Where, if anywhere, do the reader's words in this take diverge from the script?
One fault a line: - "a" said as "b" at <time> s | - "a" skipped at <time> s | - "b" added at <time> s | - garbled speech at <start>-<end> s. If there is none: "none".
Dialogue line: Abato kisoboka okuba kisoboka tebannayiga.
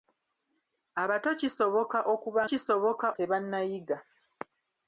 none